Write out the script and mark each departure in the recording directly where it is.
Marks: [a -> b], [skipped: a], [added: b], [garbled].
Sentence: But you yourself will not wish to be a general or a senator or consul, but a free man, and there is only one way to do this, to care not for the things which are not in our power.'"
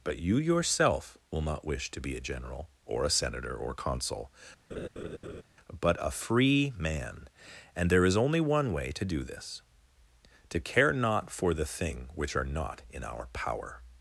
But you yourself will not wish to be a general or a senator or consul, but a free man, and there is only one way to do this, to care not for the [things -> thing] which are not in our power.'"